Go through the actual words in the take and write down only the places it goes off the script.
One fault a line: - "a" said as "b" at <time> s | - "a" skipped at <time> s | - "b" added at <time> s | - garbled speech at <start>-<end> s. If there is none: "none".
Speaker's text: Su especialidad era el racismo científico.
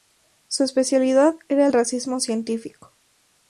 none